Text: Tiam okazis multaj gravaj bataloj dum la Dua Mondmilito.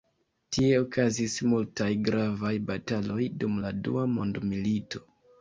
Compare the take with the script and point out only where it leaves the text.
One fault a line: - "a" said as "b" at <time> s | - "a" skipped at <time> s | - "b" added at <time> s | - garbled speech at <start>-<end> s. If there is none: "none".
- "Tiam" said as "Tie" at 0.6 s